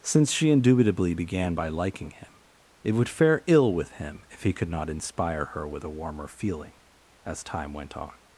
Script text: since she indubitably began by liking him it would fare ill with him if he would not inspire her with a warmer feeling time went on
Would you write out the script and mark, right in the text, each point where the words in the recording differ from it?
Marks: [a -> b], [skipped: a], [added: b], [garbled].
since she indubitably began by liking him it would fare ill with him if he [would -> could] not inspire her with a warmer feeling [added: as] time went on